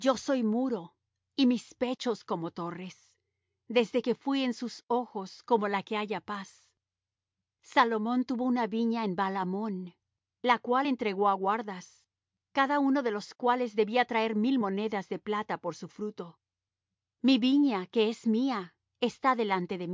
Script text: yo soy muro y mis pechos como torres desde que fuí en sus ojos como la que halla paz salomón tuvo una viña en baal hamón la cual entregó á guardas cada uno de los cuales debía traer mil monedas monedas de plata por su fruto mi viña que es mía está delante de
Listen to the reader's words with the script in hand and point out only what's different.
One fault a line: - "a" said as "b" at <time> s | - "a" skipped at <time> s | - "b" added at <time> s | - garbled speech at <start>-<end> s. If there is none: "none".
- "monedas" skipped at 15.1 s